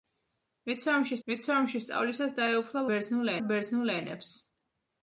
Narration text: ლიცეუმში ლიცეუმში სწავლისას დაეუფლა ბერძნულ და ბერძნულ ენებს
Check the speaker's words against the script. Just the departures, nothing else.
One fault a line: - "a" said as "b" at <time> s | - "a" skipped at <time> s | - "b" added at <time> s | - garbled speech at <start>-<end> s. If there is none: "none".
none